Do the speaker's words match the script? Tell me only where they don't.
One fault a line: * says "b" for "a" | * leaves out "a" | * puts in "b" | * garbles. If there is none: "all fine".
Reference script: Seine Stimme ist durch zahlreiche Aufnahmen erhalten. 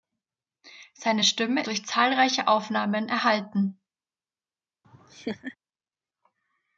* leaves out "ist"